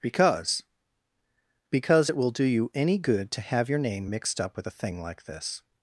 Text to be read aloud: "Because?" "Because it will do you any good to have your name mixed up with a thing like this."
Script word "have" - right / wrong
right